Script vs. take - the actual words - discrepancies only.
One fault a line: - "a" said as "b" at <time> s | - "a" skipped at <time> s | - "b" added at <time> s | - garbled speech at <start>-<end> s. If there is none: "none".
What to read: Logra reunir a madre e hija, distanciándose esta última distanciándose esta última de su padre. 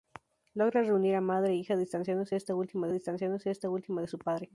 none